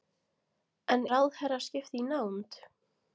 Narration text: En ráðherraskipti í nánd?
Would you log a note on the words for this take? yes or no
no